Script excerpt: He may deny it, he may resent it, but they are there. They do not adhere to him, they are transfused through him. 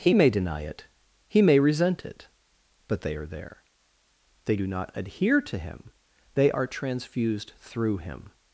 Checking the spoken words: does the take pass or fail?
pass